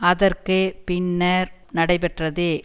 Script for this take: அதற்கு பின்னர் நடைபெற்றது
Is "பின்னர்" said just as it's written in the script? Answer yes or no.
yes